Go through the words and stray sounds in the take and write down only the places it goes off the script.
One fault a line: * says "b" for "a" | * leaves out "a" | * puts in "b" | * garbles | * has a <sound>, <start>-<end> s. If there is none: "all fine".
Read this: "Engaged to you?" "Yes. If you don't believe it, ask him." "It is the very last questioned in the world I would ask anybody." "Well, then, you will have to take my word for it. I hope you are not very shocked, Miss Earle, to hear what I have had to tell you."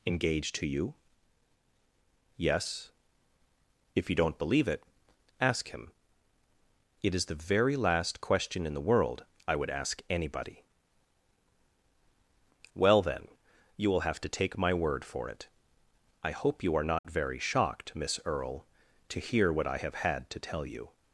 * says "question" for "questioned"
* has a dropout, 17.0-17.0 s